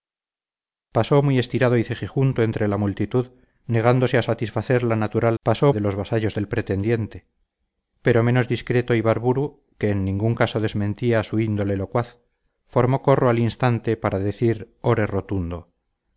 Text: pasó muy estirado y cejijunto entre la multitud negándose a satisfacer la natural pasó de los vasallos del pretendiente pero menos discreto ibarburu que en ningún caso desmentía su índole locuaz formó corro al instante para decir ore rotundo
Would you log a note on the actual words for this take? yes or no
no